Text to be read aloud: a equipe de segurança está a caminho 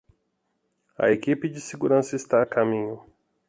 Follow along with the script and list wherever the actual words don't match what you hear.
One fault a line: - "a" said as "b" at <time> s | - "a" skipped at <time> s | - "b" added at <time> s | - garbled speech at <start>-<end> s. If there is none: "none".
none